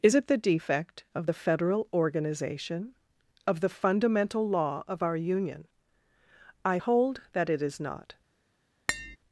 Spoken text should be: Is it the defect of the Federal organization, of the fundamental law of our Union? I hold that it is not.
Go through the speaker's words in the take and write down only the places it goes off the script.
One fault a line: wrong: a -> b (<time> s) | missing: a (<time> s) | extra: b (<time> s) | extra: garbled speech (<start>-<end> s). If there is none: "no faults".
no faults